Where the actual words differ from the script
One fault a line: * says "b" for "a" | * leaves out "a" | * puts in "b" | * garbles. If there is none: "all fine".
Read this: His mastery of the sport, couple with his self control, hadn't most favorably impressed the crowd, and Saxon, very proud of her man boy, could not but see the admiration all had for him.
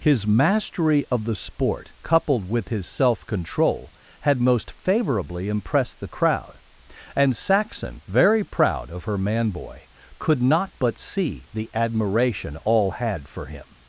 * says "coupled" for "couple"
* says "had" for "hadn't"